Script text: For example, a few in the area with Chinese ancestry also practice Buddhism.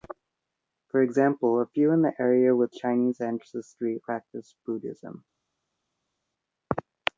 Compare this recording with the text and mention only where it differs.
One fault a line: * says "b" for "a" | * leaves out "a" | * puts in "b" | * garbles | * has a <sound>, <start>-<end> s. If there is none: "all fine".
* leaves out "also"